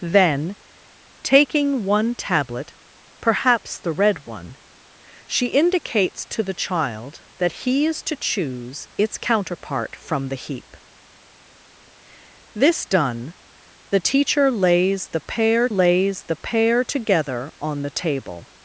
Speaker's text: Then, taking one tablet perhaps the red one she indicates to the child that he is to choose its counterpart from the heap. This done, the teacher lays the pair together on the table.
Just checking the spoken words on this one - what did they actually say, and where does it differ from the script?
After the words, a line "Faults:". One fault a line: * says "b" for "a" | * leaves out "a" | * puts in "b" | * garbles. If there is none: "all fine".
Then, taking one tablet perhaps the red one she indicates to the child that he is to choose its counterpart from the heap. This done, the teacher lays the pair lays the pair together on the table.
Faults:
* puts in "lays the pair"